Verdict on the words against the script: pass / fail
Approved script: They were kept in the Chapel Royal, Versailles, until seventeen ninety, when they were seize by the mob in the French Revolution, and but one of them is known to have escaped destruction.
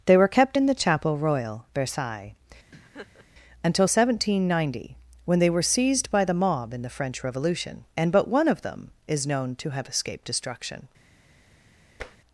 fail